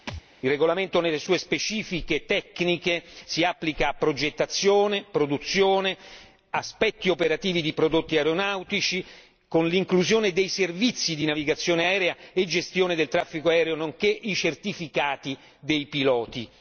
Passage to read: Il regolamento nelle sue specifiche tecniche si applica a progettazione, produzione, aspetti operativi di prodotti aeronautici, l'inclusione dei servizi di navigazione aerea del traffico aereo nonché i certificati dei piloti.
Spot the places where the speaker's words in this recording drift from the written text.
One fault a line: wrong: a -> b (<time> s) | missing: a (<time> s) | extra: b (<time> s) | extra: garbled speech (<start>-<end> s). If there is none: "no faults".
extra: con (9.5 s)
extra: e gestione (12.3 s)